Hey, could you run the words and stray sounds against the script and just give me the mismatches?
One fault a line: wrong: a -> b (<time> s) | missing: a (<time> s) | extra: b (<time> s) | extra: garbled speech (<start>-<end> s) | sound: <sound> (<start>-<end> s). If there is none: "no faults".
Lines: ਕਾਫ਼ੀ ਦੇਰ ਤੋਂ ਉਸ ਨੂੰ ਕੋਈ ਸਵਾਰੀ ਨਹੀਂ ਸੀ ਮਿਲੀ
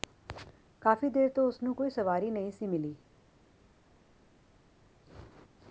no faults